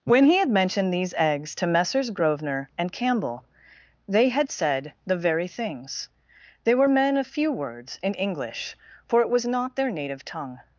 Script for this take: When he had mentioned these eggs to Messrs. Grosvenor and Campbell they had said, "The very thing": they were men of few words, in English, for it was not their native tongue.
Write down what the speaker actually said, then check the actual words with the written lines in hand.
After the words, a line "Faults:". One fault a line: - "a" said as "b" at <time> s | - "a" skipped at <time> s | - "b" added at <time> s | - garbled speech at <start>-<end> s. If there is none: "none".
When he had mentioned these eggs to Messrs. Grosvenor and Campbell they had said, "The very things": they were men of few words, in English, for it was not their native tongue.
Faults:
- "thing" said as "things" at 5.5 s